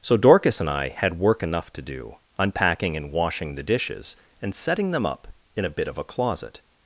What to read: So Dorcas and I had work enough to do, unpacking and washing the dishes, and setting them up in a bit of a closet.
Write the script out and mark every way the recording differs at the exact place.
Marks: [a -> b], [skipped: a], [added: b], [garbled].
So Dorcas and I had work enough to do, unpacking and washing the dishes, and setting them up in a bit of a closet.